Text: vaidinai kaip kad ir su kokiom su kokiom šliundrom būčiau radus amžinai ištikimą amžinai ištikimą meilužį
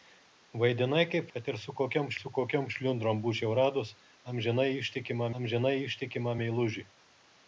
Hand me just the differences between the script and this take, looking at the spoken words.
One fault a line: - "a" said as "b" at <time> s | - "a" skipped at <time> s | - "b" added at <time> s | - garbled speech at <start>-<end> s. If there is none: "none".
none